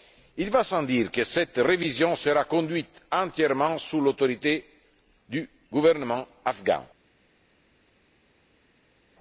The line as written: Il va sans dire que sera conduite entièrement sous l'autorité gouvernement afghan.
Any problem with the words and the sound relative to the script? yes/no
yes